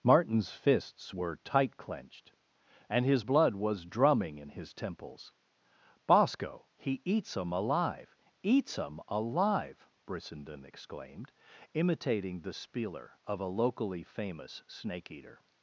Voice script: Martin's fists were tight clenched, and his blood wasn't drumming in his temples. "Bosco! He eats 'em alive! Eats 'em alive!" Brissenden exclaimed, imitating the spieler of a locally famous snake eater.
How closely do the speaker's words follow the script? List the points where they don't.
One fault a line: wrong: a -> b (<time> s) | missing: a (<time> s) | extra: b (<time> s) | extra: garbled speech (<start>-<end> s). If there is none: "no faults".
wrong: wasn't -> was (3.5 s)